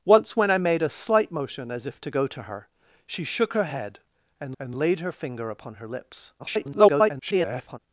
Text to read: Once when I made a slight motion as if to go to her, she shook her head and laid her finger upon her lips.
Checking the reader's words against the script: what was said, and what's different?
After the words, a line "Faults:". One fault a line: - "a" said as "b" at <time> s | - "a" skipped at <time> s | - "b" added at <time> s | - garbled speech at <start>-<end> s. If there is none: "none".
Once when I made a slight motion as if to go to her, she shook her head and and laid her finger upon her lips. [garbled]
Faults:
- "and" added at 4.6 s
- garbled speech at 6.4-7.8 s